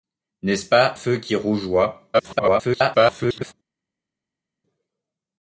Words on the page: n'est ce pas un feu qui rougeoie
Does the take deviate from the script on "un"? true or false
true